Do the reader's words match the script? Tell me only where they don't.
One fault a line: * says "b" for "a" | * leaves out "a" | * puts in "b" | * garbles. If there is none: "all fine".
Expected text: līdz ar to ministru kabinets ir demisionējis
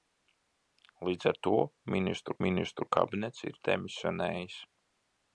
* puts in "ministru"